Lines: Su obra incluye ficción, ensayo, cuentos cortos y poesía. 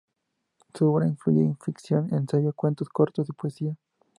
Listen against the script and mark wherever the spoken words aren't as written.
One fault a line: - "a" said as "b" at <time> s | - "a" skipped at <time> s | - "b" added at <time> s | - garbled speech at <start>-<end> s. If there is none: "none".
none